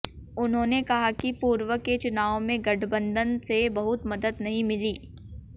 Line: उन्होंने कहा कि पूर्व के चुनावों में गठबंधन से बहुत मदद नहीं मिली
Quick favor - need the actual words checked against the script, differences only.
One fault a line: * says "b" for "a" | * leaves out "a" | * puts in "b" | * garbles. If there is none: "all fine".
all fine